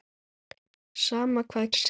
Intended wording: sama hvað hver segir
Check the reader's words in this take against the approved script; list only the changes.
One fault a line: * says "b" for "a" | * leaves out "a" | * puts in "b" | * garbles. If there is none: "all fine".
* leaves out "hver"